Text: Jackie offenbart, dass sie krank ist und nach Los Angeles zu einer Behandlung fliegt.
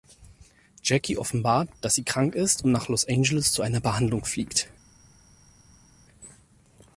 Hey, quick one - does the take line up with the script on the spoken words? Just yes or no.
yes